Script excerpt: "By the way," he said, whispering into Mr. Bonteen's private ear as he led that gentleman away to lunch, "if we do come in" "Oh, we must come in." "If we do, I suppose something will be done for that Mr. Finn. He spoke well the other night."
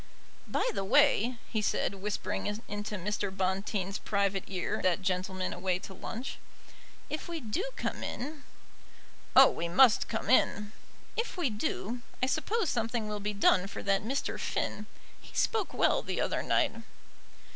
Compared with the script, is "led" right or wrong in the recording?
wrong